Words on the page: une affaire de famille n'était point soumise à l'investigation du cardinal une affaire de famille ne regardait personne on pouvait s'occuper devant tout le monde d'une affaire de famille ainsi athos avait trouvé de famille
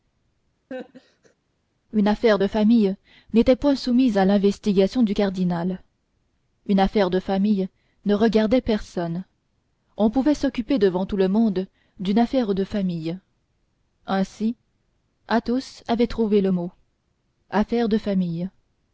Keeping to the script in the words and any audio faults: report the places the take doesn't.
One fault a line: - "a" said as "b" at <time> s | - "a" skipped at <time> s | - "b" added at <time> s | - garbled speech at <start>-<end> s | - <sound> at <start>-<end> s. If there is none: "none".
- laugh at 0.7-1.3 s
- "le mot affaire" added at 16.4 s